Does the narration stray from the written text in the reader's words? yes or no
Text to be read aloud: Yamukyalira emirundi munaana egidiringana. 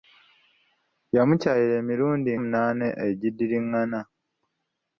no